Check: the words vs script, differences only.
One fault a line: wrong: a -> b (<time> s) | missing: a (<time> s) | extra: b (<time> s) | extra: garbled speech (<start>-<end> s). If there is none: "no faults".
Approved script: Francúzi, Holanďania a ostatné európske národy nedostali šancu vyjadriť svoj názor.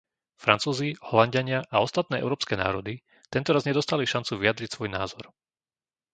extra: tentoraz (3.3 s)